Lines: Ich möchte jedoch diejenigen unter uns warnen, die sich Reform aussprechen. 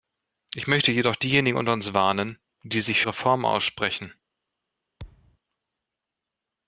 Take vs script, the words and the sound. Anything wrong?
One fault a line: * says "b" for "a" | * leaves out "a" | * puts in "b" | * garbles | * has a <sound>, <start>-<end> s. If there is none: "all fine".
* has a thud, 5.0-5.4 s